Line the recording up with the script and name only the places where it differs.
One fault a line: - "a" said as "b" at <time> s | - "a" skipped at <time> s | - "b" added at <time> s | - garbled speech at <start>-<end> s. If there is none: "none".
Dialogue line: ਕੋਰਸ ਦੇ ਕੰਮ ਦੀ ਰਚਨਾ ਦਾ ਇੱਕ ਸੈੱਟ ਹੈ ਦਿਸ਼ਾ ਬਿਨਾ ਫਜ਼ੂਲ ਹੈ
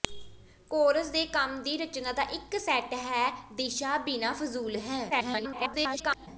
- garbled speech at 5.1-6.3 s